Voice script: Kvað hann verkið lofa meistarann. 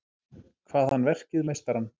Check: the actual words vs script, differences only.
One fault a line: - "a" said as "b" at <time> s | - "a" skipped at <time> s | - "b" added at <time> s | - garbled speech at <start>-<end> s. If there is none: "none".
- "lofa" skipped at 1.5 s